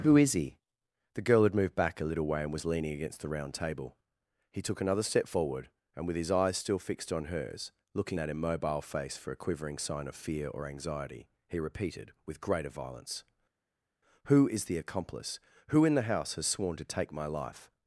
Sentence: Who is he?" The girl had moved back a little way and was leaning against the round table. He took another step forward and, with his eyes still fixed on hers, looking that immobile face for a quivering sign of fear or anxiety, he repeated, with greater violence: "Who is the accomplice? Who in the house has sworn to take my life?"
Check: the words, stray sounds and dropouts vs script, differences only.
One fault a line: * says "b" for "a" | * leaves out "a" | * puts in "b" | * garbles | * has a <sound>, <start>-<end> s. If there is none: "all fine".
all fine